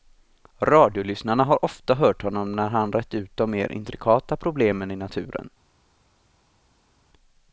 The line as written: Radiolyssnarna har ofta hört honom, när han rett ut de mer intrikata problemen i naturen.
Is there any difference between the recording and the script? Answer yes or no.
no